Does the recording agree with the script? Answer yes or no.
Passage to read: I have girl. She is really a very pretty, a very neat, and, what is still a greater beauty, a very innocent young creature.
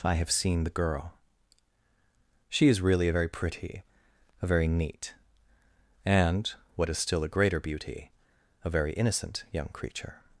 no